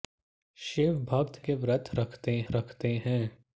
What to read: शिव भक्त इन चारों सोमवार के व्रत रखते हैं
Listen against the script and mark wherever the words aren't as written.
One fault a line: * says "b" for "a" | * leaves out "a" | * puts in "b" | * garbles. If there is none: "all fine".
* leaves out "इन चारों सोमवार"
* puts in "रखते"